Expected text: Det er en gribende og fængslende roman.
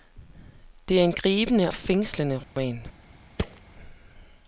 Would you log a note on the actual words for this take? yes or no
yes